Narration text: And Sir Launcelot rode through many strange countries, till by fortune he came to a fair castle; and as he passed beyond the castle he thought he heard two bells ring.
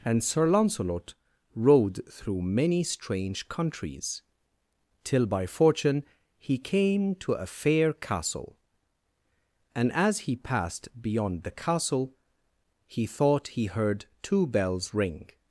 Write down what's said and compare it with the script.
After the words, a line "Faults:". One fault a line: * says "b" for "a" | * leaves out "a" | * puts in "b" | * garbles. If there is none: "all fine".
And Sir Launcelot rode through many strange countries, till by fortune he came to a fair castle; and as he passed beyond the castle he thought he heard two bells ring.
Faults:
all fine